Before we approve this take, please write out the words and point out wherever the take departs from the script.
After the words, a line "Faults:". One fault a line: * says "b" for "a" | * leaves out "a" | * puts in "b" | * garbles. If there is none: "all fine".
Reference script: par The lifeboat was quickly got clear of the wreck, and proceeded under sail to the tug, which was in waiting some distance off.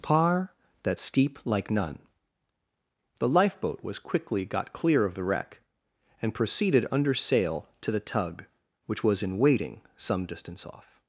par that steep like none The lifeboat was quickly got clear of the wreck, and proceeded under sail to the tug, which was in waiting some distance off.
Faults:
* puts in "that steep like none"